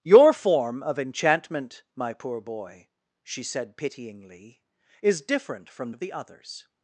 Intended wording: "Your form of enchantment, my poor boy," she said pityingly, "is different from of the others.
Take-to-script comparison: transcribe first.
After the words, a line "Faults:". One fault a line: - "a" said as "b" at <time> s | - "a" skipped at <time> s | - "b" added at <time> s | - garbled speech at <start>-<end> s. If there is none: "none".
"Your form of enchantment, my poor boy," she said pityingly, "is different from of the others.
Faults:
none